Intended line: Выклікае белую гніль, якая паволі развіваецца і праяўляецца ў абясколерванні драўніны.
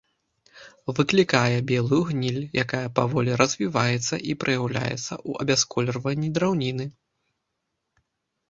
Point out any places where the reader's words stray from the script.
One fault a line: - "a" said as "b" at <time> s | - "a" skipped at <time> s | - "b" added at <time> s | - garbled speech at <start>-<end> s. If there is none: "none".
none